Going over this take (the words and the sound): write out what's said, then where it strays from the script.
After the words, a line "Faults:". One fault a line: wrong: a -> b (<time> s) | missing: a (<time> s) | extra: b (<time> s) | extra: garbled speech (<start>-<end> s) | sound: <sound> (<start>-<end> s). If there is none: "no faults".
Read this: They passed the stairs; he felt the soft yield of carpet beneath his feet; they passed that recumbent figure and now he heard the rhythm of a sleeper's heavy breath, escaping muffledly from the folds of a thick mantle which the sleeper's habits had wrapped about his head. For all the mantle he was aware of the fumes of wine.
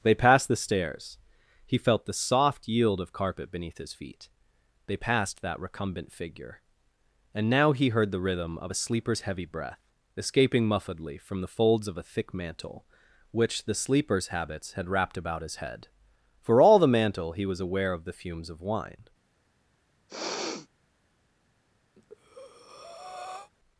They passed the stairs; he felt the soft yield of carpet beneath his feet; they passed that recumbent figure and now he heard the rhythm of a sleeper's heavy breath, escaping muffledly from the folds of a thick mantle which the sleeper's habits had wrapped about his head. For all the mantle he was aware of the fumes of wine.
Faults:
sound: sniff (20.1-20.7 s)
sound: breath (22.0-23.5 s)